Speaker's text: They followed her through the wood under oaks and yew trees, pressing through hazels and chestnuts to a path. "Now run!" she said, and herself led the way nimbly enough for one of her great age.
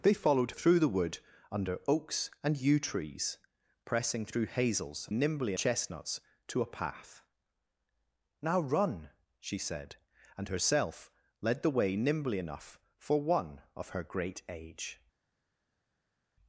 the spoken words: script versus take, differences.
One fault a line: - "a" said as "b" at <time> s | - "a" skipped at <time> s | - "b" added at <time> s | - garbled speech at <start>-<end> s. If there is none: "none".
- "her" skipped at 0.5 s
- "and" said as "nimbly" at 5.1 s